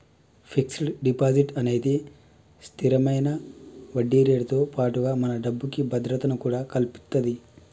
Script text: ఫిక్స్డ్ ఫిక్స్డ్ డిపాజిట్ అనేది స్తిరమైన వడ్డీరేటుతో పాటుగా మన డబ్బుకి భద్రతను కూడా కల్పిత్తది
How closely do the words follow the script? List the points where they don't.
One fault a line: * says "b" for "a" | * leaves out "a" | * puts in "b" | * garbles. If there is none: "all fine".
* leaves out "ఫిక్స్డ్"